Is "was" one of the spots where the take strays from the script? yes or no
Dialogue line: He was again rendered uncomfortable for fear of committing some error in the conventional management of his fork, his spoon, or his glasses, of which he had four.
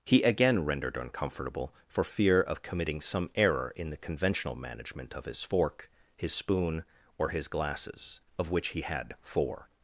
yes